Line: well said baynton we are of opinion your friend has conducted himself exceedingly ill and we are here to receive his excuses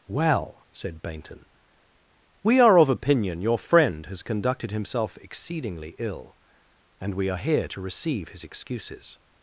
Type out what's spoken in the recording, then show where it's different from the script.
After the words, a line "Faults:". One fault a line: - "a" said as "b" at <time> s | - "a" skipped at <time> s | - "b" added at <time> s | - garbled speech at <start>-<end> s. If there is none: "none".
well said baynton we are of opinion your friend has conducted himself exceedingly ill and we are here to receive his excuses
Faults:
none